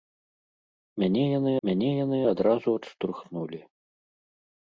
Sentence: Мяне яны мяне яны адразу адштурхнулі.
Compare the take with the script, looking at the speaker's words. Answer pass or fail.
pass